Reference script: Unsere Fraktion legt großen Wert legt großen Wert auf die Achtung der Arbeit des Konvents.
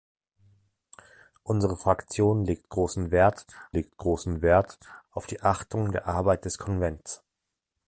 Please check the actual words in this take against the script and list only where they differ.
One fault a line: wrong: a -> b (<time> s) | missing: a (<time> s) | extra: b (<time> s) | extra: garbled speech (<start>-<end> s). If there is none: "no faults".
no faults